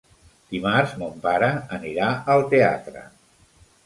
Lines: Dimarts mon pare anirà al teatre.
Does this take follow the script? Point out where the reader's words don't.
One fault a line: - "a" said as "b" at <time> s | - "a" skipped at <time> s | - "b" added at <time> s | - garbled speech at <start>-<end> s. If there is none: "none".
none